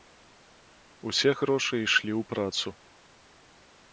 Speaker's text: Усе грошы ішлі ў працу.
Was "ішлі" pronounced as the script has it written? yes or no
yes